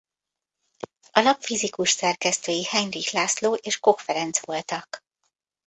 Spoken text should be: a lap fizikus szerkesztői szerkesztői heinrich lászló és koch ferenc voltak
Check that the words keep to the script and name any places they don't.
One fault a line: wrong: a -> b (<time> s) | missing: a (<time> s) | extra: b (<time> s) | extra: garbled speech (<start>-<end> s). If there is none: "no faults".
missing: szerkesztői (2.6 s)